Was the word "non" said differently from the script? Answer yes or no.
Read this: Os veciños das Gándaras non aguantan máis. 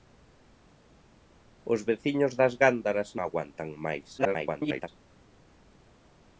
yes